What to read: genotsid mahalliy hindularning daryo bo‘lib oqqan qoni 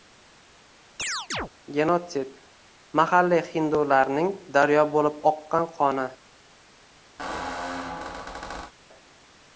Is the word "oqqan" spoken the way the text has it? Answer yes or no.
yes